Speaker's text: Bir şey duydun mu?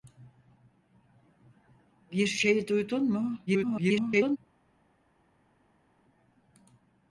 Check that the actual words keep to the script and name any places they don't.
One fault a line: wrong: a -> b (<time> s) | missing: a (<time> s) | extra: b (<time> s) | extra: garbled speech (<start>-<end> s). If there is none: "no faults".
extra: garbled speech (3.5-4.4 s)